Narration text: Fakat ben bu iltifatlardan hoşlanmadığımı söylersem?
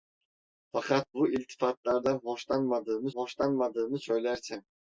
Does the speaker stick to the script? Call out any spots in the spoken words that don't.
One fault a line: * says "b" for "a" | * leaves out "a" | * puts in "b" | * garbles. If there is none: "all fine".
* leaves out "ben"
* puts in "hoşlanmadığımı"